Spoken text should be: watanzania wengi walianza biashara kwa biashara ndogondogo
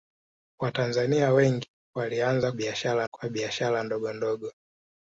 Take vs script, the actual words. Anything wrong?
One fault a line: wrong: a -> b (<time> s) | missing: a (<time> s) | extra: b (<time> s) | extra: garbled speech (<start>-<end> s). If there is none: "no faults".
no faults